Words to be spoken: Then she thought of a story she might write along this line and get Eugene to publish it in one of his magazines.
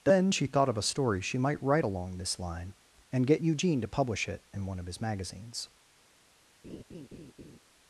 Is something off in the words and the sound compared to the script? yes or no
yes